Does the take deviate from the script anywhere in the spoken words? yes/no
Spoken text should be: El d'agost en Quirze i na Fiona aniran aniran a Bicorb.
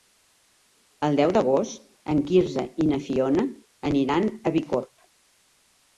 yes